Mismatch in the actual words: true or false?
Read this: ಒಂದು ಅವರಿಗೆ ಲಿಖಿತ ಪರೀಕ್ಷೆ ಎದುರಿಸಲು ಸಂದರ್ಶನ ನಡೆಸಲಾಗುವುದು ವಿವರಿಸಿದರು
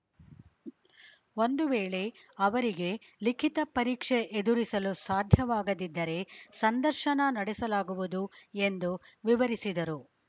true